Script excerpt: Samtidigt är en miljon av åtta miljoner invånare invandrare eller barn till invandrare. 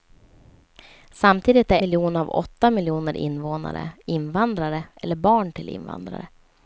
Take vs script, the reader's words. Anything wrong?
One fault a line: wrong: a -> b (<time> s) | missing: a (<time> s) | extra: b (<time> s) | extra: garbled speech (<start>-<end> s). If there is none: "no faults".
missing: en (1.8 s)